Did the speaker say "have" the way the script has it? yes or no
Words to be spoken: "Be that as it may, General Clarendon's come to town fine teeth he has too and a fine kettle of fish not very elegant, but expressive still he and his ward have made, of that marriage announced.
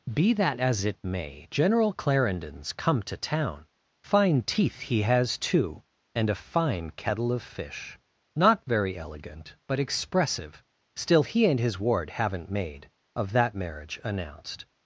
no